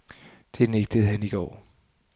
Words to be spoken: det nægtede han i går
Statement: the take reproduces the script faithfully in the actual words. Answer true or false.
true